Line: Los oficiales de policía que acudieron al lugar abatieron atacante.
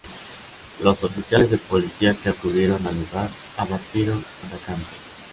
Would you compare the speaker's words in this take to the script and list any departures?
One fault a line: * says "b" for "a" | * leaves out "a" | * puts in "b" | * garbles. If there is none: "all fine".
all fine